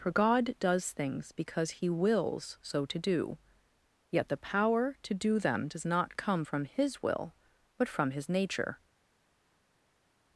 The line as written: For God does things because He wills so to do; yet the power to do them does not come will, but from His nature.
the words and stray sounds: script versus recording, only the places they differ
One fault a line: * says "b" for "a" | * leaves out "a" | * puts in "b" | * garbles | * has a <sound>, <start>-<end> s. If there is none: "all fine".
* puts in "from His"